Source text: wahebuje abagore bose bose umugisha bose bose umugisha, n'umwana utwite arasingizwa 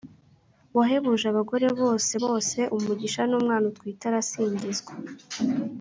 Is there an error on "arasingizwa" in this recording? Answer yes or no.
no